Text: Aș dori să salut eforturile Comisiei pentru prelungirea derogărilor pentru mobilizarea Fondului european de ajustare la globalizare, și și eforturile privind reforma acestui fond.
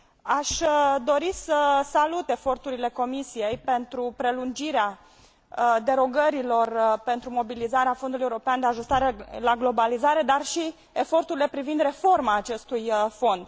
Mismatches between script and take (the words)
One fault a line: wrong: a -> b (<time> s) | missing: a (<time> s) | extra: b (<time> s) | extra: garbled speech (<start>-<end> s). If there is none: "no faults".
wrong: și -> dar (10.2 s)